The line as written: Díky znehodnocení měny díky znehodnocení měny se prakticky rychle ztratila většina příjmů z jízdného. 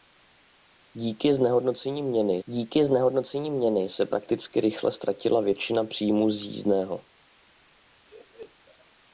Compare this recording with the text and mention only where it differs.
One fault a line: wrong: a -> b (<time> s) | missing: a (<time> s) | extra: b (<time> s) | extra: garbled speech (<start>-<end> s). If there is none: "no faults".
no faults